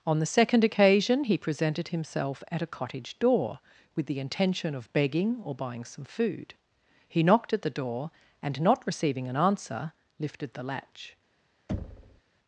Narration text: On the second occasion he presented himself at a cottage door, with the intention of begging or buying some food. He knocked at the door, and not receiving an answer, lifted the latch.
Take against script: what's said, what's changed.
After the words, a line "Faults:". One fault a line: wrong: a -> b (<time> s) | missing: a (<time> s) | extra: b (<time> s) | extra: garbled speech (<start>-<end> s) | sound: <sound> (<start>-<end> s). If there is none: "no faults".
On the second occasion he presented himself at a cottage door, with the intention of begging or buying some food. He knocked at the door, and not receiving an answer, lifted the latch.
Faults:
sound: thud (11.7-12.2 s)